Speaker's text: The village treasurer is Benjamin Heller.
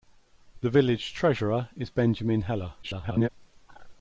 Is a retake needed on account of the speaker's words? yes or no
yes